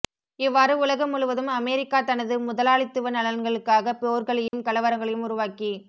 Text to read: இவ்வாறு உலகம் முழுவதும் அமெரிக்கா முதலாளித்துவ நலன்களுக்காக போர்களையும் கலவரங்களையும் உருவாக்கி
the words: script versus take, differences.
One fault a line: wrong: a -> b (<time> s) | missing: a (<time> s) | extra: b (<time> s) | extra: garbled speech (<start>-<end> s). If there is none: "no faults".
extra: தனது (2.0 s)